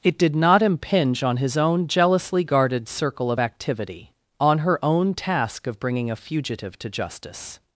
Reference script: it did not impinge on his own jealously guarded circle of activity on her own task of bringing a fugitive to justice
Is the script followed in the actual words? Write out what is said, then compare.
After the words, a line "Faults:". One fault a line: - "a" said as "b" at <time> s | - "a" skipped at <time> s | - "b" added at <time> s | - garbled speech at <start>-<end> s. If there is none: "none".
it did not impinge on his own jealously guarded circle of activity on her own task of bringing a fugitive to justice
Faults:
none